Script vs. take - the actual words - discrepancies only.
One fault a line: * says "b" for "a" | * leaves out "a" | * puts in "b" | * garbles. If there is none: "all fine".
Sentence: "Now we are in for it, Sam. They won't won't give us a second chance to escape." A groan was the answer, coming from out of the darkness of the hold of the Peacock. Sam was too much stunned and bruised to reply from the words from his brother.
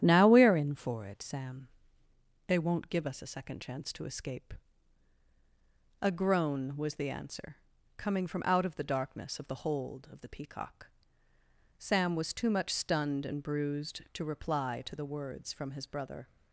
* leaves out "won't"
* says "to" for "from"